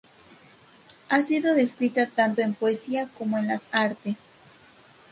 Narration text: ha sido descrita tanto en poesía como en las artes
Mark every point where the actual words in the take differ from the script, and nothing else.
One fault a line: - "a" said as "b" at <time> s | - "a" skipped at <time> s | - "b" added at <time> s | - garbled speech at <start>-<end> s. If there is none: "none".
none